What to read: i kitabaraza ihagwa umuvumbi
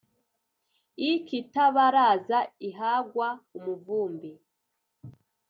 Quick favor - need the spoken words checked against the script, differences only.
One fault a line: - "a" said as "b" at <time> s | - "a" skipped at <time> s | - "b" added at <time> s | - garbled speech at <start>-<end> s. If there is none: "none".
none